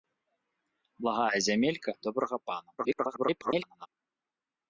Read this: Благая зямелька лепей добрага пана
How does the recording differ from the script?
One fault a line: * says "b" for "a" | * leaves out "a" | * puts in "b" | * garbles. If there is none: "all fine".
* leaves out "лепей"
* garbles